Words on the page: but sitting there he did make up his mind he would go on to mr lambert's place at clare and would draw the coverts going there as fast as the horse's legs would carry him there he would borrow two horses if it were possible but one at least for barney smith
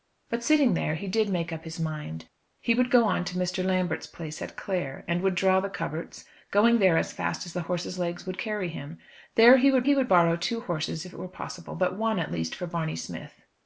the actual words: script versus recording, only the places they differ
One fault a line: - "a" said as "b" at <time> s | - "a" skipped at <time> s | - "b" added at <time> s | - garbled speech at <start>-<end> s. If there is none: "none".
- "he would" added at 9.8 s